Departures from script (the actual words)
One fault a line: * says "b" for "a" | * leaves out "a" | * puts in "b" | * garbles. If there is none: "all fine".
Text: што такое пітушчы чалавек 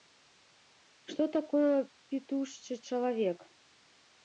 all fine